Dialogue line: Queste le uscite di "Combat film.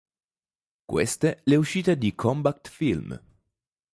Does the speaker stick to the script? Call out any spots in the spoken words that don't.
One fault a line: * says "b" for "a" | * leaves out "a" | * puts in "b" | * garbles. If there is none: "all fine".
all fine